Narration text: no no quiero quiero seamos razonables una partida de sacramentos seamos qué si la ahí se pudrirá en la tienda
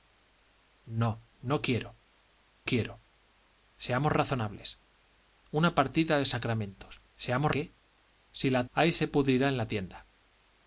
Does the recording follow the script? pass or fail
pass